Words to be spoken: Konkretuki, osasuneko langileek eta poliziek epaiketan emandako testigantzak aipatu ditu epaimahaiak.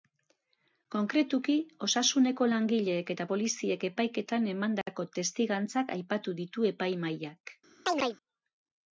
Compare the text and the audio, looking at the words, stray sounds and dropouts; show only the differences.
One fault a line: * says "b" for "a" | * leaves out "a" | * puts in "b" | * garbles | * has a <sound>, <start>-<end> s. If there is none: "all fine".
* has a chirp, 7.9-8.2 s